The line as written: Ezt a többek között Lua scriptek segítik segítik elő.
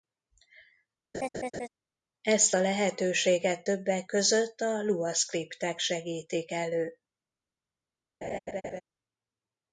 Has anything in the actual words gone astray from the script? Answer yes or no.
yes